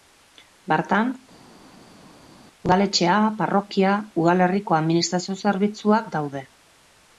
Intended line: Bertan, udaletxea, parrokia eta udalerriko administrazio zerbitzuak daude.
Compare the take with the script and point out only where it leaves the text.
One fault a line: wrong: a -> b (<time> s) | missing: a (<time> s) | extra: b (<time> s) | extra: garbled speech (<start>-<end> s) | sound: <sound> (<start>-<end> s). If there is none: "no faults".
missing: eta (3.9 s)